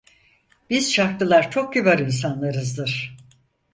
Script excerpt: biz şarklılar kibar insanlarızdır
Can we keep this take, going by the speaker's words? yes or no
no